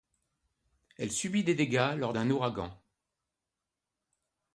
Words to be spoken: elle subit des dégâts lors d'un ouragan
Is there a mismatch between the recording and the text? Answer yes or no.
no